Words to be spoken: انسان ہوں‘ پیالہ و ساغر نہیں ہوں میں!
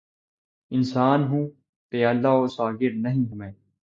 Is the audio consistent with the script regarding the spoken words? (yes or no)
no